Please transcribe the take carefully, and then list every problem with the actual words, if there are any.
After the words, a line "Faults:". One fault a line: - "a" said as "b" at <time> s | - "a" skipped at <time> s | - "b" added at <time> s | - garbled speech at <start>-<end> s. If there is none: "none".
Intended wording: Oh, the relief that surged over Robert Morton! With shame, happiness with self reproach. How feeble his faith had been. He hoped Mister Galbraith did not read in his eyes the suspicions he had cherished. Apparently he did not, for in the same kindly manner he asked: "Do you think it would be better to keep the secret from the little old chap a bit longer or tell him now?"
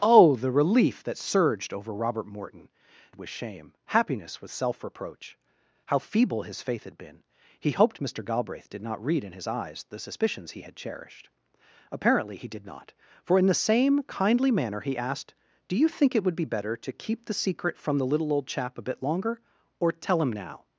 Oh, the relief that surged over Robert Morton! With shame, happiness with self reproach. How feeble his faith had been. He hoped Mister Galbraith did not read in his eyes the suspicions he had cherished. Apparently he did not, for in the same kindly manner he asked: "Do you think it would be better to keep the secret from the little old chap a bit longer or tell him now?"
Faults:
none